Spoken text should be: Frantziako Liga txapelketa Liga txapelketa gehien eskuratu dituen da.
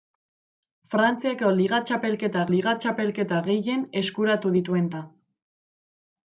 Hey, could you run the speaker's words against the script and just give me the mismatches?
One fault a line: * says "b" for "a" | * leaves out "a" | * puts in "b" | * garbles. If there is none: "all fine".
all fine